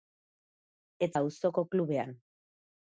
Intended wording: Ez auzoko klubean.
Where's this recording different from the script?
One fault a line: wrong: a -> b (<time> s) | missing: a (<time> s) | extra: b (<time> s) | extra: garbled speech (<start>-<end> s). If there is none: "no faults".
no faults